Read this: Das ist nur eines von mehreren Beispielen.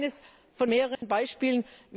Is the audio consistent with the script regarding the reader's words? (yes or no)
yes